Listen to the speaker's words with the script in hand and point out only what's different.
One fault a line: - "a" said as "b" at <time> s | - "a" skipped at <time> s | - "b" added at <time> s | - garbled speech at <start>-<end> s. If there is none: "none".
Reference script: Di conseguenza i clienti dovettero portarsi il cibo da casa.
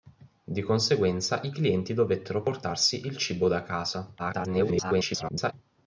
- garbled speech at 4.2-5.5 s